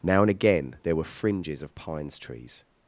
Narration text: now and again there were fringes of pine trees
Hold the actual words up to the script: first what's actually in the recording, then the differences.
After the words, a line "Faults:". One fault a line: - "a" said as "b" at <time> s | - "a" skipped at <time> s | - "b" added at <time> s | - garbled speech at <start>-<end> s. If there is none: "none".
now and again there were fringes of pines trees
Faults:
- "pine" said as "pines" at 1.7 s